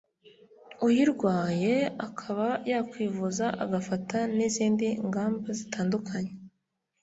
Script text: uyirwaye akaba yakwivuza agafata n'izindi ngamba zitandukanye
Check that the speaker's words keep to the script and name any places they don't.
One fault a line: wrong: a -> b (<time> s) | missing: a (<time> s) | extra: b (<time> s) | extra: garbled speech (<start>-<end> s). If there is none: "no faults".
no faults